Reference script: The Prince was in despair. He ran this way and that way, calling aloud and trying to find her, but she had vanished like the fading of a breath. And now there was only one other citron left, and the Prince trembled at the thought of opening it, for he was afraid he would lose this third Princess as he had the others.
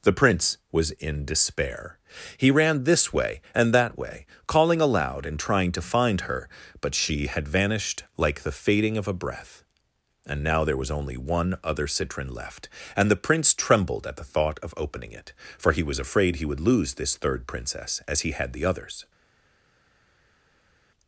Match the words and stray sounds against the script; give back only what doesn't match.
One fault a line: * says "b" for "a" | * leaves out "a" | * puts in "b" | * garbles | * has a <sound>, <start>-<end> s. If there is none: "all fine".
all fine